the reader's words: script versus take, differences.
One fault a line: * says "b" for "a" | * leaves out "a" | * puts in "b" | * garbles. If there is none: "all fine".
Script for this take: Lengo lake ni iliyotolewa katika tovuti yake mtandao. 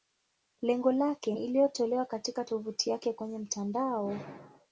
* puts in "kwenye"